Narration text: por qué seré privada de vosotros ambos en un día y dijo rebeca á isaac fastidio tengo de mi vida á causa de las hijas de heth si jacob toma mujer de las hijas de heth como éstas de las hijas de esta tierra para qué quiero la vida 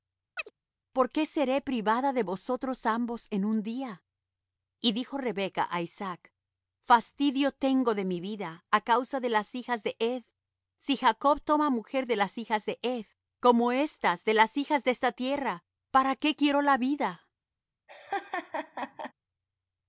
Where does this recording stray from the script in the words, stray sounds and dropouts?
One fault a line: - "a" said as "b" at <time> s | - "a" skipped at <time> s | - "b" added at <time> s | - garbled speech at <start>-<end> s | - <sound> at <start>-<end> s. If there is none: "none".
- chirp at 0.4-0.5 s
- laugh at 17.9-19.1 s